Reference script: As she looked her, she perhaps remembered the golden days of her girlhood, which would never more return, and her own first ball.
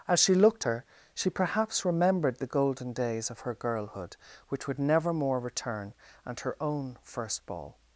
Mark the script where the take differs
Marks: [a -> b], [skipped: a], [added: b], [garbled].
As she looked her, she perhaps remembered the golden days of her girlhood, which would never more return, and her own first ball.